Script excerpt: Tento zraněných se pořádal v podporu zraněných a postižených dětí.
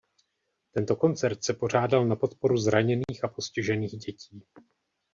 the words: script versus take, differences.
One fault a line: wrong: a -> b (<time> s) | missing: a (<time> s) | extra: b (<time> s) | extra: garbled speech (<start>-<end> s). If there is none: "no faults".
wrong: zraněných -> koncert (0.9 s)
wrong: v -> na (2.0 s)